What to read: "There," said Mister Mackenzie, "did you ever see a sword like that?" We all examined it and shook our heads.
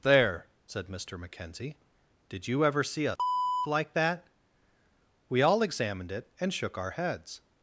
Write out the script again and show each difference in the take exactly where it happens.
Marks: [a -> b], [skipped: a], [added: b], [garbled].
"There," said Mister Mackenzie, "did you ever see a [skipped: sword] like that?" We all examined it and shook our heads.